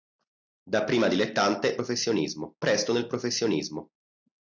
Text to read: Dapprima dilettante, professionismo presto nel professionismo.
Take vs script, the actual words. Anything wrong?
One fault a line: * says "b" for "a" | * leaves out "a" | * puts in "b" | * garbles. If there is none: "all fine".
all fine